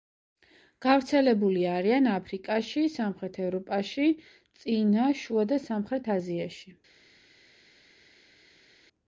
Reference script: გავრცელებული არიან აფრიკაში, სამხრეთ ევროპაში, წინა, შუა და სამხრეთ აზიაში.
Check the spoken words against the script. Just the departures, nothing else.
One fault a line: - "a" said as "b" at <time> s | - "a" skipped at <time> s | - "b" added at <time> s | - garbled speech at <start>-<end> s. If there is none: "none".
none